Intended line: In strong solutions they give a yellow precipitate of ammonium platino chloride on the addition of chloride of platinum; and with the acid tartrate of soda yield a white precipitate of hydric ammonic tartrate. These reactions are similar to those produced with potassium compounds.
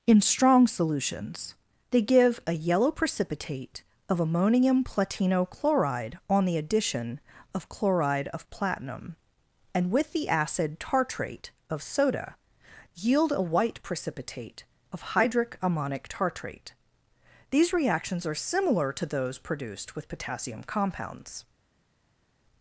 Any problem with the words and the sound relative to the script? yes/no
no